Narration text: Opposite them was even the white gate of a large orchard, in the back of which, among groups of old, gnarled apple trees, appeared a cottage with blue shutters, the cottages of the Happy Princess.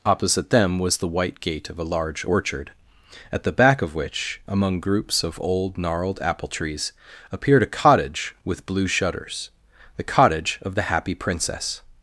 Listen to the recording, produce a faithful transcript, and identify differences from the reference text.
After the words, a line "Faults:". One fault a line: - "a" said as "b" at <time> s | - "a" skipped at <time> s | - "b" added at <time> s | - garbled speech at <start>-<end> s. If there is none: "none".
Opposite them was the white gate of a large orchard, at the back of which, among groups of old, gnarled apple trees, appeared a cottage with blue shutters, the cottage of the Happy Princess.
Faults:
- "even" skipped at 1.0 s
- "in" said as "at" at 3.3 s
- "cottages" said as "cottage" at 10.0 s